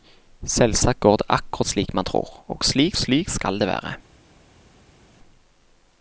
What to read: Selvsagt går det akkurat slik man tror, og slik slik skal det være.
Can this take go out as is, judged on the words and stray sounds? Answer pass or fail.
pass